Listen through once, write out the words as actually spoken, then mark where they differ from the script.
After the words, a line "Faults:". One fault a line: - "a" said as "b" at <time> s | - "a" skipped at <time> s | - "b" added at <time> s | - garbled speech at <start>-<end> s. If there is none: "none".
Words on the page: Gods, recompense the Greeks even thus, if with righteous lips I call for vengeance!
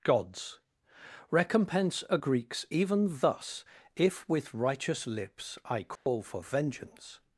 Gods, recompense a Greeks even thus, if with righteous lips I call for vengeance!
Faults:
- "the" said as "a" at 2.1 s